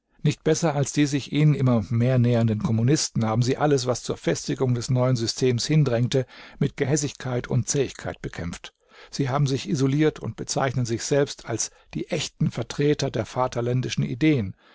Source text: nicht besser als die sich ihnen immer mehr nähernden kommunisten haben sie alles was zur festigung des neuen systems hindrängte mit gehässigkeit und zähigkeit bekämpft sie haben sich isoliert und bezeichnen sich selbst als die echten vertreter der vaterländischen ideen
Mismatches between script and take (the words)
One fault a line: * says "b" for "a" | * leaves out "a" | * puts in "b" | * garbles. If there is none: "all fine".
all fine